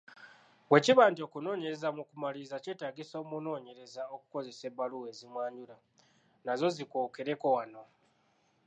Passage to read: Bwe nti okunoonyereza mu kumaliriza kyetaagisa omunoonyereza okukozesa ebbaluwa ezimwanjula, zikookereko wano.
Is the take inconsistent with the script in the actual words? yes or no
yes